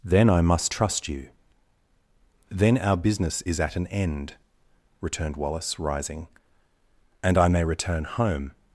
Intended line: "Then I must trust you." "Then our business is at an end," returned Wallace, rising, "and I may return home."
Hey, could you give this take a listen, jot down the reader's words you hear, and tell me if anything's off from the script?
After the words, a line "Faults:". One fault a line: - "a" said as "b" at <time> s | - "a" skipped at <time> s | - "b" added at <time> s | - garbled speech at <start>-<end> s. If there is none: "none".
"Then I must trust you." "Then our business is at an end," returned Wallace, rising, "and I may return home."
Faults:
none